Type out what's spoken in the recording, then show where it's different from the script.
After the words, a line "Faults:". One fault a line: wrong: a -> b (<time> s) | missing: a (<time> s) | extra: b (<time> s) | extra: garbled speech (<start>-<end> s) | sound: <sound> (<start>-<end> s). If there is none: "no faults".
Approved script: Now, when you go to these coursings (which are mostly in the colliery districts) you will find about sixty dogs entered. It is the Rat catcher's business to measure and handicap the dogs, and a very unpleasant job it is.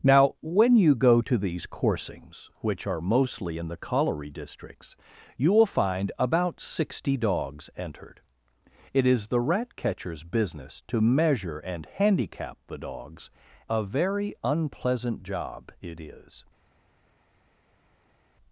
Now, when you go to these coursings (which are mostly in the colliery districts) you will find about sixty dogs entered. It is the Rat catcher's business to measure and handicap the dogs, a very unpleasant job it is.
Faults:
missing: and (13.3 s)